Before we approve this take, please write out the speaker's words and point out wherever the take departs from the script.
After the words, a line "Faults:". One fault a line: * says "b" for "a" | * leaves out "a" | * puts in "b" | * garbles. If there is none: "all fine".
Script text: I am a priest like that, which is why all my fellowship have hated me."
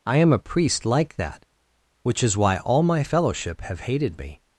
I am a priest like that, which is why all my fellowship have hated me."
Faults:
all fine